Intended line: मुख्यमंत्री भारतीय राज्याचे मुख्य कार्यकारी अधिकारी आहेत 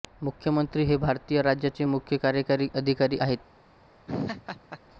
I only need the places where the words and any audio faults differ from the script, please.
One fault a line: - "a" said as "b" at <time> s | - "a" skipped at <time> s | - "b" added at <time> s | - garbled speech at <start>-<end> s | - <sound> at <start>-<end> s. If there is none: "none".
- "हे" added at 0.8 s
- laugh at 4.1-4.8 s